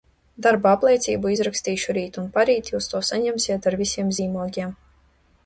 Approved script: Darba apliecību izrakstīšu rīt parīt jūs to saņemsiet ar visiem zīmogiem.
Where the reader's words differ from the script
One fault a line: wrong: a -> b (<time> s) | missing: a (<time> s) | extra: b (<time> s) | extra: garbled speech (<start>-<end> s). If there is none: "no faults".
extra: un (2.2 s)